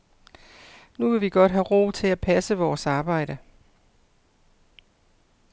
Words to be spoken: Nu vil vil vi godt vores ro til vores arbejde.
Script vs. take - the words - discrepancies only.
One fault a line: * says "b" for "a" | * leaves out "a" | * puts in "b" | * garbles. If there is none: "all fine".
* leaves out "vil"
* says "have" for "vores"
* puts in "at passe"